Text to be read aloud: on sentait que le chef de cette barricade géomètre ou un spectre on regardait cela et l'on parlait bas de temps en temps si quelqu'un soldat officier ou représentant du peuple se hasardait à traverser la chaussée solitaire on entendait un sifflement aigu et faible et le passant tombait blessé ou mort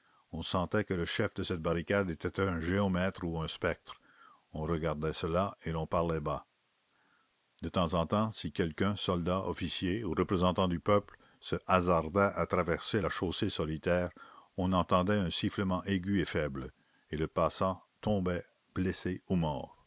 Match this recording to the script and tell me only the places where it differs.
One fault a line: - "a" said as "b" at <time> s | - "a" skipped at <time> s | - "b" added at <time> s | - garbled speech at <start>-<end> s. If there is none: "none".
- "était un" added at 2.1 s